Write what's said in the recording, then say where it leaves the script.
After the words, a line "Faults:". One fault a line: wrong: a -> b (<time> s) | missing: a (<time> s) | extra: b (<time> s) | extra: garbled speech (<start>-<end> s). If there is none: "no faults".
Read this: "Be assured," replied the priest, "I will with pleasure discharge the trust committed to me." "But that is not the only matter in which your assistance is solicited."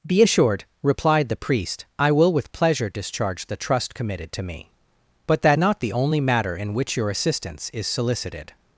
"Be assured," replied the priest, "I will with pleasure discharge the trust committed to me." "But that not the only matter in which your assistance is solicited."
Faults:
missing: is (5.6 s)